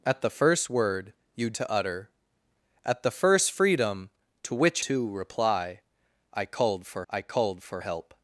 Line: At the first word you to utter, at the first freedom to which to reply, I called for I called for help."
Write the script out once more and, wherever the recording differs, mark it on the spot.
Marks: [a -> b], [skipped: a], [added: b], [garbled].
At the first word you to utter, at the first freedom to which to reply, I called for I called for help."